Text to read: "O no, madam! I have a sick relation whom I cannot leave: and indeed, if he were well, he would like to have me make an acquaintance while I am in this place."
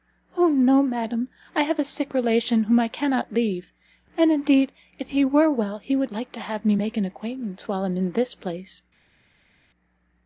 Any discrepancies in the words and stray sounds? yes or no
no